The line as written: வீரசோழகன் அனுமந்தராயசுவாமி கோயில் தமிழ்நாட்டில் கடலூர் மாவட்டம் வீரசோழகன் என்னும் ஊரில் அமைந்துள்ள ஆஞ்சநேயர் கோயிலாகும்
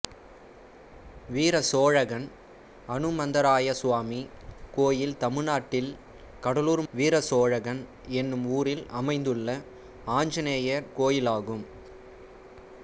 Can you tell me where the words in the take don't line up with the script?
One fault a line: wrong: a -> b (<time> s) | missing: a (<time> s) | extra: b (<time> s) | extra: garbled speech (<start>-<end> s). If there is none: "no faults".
missing: மாவட்டம் (6.8 s)